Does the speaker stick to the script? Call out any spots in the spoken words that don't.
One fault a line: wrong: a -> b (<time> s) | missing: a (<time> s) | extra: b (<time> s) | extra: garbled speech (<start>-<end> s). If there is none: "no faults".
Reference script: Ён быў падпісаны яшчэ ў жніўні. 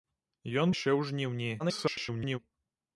missing: быў падпісаны (0.7 s)
extra: garbled speech (1.6-2.4 s)